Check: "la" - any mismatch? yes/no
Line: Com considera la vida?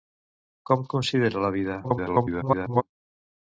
no